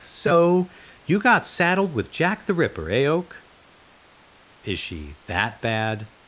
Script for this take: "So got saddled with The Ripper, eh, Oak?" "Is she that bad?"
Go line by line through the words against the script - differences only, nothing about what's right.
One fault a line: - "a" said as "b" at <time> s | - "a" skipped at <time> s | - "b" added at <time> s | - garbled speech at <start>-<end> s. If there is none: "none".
- "you" added at 1.1 s
- "Jack" added at 2.1 s